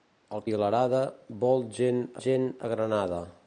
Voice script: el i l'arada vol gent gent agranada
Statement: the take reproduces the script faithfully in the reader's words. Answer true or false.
true